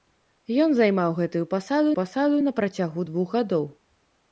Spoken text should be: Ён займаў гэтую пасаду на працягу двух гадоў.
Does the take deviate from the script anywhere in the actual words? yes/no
yes